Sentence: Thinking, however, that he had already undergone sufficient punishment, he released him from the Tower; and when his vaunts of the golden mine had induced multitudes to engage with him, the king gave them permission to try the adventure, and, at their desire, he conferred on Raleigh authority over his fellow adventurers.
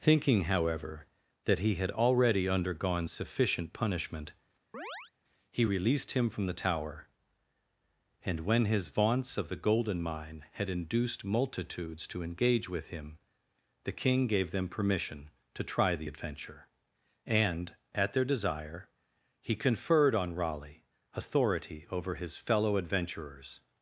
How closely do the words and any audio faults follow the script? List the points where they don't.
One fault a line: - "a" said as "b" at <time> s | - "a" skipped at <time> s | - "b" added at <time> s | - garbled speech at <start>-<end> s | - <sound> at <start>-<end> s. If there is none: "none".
- chirp at 4.7-5.1 s